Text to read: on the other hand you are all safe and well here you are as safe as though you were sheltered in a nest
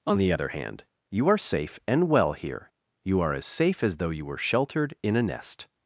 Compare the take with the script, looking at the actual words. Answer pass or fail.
fail